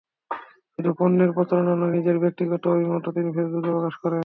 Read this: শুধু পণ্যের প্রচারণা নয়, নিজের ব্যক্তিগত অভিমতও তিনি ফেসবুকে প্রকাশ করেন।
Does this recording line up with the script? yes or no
yes